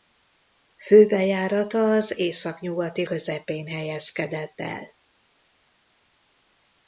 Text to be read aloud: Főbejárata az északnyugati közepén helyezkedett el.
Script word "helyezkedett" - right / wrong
right